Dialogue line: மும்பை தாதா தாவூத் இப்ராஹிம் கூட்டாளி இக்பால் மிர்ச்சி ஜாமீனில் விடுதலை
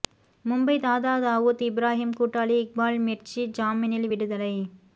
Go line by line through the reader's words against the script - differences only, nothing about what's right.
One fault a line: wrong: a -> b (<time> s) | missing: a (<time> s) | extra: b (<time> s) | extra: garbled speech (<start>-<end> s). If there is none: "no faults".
no faults